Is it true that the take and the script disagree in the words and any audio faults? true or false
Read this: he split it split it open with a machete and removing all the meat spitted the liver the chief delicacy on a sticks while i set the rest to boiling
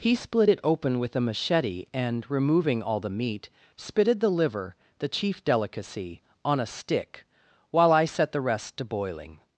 true